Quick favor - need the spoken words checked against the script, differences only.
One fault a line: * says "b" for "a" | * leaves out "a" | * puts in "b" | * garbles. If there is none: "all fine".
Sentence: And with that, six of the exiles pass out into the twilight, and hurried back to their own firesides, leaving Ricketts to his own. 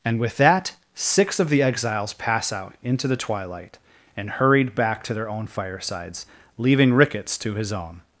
all fine